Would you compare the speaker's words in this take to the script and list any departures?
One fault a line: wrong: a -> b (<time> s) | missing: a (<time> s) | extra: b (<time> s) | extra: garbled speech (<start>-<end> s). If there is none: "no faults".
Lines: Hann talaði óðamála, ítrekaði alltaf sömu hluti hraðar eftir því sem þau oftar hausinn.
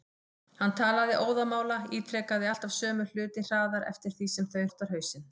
no faults